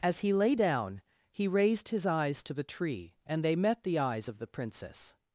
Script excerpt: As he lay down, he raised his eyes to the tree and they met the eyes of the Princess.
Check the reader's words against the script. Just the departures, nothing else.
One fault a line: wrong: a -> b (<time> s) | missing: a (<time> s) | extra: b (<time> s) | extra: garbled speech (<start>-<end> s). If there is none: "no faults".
no faults